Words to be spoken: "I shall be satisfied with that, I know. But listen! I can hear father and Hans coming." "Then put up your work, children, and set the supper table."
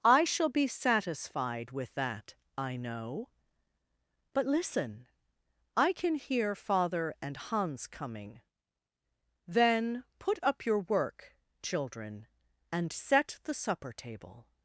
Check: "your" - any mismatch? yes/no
no